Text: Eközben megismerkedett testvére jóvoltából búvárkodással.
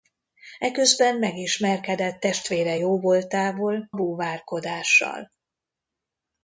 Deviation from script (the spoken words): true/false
false